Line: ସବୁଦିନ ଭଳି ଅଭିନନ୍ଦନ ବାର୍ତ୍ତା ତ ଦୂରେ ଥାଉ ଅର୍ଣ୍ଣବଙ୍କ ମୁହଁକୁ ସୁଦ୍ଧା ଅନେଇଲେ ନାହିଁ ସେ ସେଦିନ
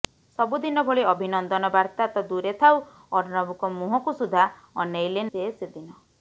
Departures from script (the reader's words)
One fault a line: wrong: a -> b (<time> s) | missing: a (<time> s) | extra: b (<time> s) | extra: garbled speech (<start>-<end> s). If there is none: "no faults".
missing: ନାହିଁ (5.3 s)